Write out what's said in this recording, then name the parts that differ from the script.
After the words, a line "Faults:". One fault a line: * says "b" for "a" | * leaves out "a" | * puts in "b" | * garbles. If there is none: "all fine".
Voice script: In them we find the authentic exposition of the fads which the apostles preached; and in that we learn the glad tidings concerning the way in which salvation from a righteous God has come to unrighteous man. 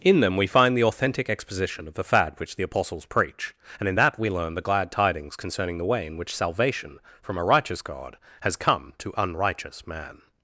In them we find the authentic exposition of the fad which the apostles preach; and in that we learn the glad tidings concerning the way in which salvation from a righteous God has come to unrighteous man.
Faults:
* says "fad" for "fads"
* says "preach" for "preached"